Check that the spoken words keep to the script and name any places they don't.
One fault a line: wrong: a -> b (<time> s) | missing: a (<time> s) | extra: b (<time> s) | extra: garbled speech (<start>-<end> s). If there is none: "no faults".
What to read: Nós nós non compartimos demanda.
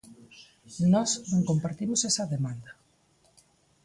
missing: nós (1.1 s)
extra: esa (2.1 s)